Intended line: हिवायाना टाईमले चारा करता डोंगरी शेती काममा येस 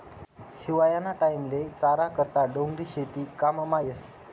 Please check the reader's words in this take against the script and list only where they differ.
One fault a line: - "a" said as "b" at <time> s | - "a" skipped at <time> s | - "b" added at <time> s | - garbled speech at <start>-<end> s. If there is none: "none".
none